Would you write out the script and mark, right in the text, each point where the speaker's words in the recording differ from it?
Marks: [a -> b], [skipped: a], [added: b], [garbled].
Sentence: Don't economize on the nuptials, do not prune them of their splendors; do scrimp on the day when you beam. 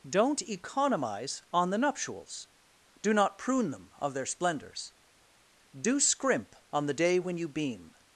Don't economize on the nuptials, do not prune them of their splendors; do scrimp on the day when you beam.